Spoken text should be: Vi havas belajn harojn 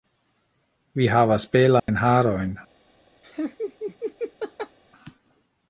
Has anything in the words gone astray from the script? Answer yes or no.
no